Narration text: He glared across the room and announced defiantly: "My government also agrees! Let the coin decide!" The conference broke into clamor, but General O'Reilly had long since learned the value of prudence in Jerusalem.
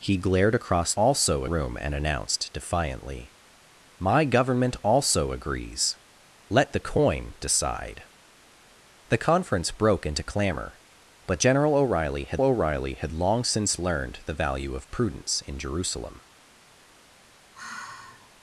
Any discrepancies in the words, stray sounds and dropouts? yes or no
yes